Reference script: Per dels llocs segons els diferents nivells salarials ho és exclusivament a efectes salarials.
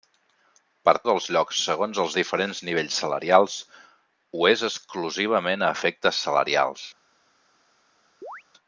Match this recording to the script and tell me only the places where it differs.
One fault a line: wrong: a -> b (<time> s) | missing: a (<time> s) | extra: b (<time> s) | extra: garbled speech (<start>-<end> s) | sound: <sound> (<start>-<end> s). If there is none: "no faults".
sound: chirp (8.2-8.4 s)